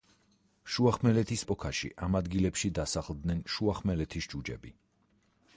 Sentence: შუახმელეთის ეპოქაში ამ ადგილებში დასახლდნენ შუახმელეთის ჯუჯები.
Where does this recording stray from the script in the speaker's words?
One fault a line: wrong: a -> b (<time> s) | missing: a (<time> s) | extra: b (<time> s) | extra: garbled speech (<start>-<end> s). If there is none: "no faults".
no faults